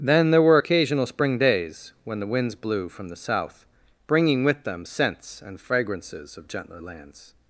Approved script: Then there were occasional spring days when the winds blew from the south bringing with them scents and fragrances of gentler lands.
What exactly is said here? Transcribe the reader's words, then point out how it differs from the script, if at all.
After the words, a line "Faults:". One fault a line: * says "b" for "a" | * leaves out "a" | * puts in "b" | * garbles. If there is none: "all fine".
Then there were occasional spring days when the winds blew from the south bringing with them scents and fragrances of gentler lands.
Faults:
all fine